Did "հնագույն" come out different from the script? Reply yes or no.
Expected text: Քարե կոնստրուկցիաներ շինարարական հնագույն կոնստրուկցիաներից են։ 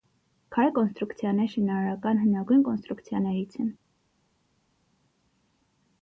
no